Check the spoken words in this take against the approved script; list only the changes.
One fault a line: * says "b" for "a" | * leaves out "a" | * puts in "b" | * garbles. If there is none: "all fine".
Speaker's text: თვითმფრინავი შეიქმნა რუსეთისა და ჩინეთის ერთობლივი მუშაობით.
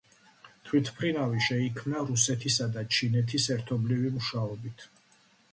all fine